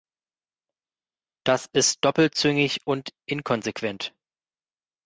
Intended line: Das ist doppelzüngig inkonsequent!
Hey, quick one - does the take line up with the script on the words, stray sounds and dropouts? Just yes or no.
no